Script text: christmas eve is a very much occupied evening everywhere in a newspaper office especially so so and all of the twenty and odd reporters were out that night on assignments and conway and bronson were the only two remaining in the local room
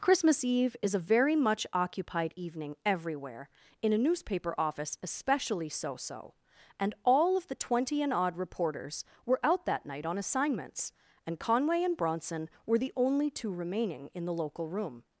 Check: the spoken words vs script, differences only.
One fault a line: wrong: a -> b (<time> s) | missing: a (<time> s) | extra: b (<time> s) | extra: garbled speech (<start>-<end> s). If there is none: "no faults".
no faults